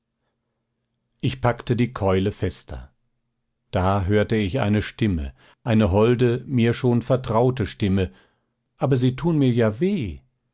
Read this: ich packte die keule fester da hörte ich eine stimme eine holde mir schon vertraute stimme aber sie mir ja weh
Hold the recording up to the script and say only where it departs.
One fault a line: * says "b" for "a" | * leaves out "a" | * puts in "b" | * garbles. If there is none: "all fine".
* puts in "tun"